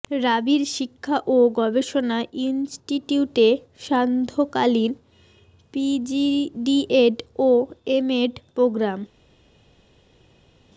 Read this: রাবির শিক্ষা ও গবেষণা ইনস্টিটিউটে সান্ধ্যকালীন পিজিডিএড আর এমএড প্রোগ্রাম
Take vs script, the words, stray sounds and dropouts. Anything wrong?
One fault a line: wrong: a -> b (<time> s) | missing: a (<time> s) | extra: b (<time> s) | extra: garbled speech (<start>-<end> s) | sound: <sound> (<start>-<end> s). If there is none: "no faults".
wrong: আর -> ও (7.4 s)